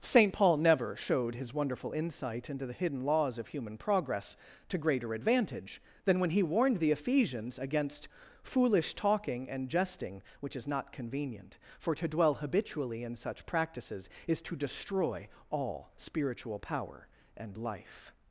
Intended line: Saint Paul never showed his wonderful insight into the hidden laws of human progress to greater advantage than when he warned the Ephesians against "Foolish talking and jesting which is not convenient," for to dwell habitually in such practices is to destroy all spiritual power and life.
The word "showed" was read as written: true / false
true